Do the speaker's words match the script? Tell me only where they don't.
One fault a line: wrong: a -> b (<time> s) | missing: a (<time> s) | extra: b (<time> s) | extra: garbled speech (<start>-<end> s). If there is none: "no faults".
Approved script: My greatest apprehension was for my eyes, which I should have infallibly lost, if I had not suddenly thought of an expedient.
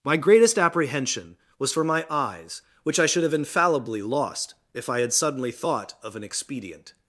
missing: not (5.1 s)